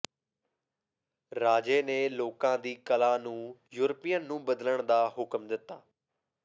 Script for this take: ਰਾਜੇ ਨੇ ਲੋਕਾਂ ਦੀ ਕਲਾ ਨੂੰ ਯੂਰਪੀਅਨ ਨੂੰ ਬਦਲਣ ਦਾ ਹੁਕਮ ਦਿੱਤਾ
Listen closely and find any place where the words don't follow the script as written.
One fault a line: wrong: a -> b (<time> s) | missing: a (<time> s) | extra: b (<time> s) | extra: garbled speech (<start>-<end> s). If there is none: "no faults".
no faults